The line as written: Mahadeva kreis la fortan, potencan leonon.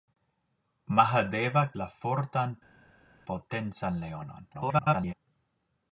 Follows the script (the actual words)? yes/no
no